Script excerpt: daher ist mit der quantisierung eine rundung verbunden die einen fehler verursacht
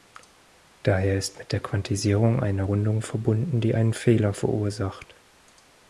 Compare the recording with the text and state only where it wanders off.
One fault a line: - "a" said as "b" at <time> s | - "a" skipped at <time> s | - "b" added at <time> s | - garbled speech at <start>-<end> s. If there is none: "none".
none